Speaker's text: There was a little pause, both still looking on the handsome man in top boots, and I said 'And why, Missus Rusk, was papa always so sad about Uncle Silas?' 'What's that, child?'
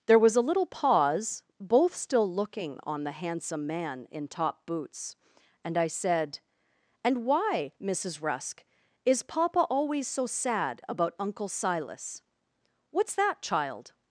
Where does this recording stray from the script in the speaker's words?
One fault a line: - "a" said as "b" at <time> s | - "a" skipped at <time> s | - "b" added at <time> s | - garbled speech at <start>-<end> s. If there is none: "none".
- "was" said as "is" at 9.0 s